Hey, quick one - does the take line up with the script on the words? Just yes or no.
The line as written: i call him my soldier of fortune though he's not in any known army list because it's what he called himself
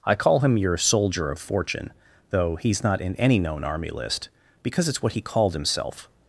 no